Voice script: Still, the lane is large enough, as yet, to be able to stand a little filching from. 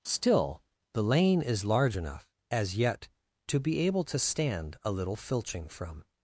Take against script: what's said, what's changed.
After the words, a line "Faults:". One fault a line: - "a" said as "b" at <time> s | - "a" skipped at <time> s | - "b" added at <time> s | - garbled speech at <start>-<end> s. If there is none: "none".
Still, the lane is large enough, as yet, to be able to stand a little filching from.
Faults:
none